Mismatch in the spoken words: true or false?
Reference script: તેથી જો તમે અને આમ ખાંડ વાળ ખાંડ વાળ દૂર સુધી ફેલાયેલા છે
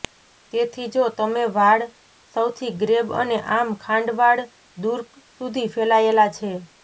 true